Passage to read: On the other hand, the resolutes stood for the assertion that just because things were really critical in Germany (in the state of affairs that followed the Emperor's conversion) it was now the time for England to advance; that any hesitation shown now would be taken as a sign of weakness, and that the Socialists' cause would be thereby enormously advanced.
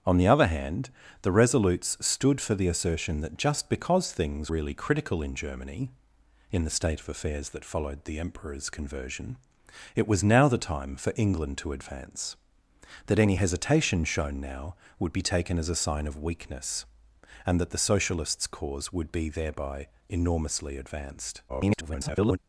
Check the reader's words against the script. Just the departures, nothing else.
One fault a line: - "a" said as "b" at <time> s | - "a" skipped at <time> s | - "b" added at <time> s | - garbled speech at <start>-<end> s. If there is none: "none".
- "were" skipped at 4.5 s
- garbled speech at 21.5-22.4 s